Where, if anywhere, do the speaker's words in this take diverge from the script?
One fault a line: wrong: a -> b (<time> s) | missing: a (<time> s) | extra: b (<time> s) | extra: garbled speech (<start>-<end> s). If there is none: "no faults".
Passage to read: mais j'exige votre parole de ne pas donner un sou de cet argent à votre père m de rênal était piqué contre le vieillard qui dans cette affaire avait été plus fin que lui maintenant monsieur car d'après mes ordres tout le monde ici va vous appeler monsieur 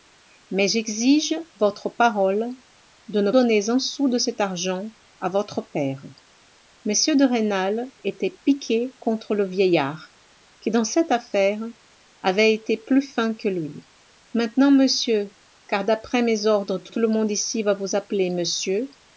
missing: pas (3.3 s)
extra: tout (16.9 s)